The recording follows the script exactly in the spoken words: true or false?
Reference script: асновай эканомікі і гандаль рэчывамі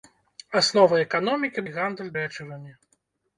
true